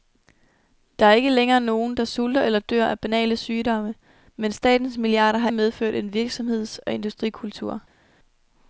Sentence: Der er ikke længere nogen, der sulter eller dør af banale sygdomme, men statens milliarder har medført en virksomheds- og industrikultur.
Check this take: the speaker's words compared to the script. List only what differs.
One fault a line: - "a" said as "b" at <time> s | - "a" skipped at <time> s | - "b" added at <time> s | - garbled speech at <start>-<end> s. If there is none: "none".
none